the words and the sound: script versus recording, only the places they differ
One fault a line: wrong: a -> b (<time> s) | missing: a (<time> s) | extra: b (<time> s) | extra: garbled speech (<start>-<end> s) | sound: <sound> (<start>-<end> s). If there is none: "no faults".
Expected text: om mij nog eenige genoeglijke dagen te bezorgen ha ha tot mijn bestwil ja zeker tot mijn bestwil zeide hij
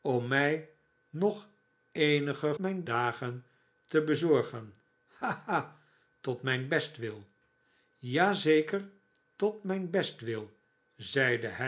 wrong: genoeglijke -> mijn (2.6 s)